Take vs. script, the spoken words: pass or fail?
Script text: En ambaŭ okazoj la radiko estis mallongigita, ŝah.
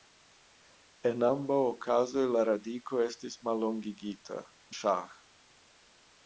pass